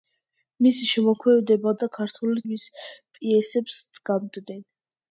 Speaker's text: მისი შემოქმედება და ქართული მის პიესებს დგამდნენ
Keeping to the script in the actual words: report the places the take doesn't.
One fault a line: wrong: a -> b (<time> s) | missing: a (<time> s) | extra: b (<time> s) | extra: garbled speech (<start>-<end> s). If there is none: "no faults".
no faults